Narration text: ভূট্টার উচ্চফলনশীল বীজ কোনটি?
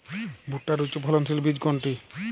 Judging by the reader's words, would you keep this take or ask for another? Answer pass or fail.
pass